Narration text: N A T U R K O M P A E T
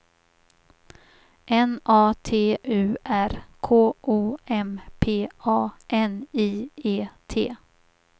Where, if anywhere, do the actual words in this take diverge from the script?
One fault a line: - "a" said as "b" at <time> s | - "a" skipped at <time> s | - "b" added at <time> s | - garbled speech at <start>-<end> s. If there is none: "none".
- "N I" added at 5.9 s